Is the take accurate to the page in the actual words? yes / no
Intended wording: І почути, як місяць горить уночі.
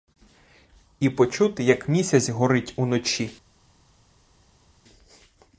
yes